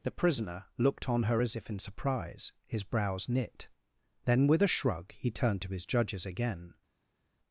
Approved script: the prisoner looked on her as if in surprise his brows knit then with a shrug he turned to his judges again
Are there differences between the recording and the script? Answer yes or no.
no